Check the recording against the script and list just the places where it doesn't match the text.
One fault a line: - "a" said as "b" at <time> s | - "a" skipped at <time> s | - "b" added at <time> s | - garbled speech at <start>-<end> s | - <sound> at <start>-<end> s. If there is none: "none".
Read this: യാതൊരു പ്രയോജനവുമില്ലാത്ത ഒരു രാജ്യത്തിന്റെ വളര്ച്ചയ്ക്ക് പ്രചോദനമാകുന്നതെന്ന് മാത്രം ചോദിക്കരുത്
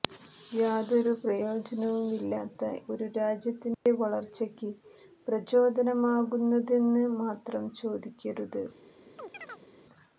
- dropout at 3.7-3.9 s
- chirp at 9.2-9.7 s